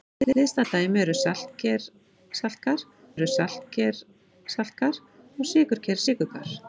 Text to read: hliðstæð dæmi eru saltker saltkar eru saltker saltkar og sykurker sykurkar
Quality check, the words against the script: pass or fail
pass